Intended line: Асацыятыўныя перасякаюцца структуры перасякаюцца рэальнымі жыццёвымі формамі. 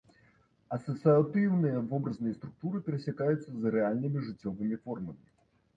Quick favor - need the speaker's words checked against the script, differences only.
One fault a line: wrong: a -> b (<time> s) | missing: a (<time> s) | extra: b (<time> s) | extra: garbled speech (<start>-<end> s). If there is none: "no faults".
wrong: перасякаюцца -> вобразныя (1.9 s)
extra: з (3.6 s)